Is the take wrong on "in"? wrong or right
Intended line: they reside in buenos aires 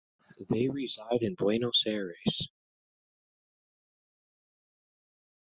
right